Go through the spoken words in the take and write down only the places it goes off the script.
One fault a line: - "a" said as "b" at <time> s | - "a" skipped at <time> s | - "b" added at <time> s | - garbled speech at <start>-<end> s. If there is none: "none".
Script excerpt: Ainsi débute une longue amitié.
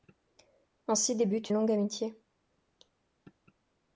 - "une" skipped at 1.5 s